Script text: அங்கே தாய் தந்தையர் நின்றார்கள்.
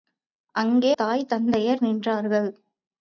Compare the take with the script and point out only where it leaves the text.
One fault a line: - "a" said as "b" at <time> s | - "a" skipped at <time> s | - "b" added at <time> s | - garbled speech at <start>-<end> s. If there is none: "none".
none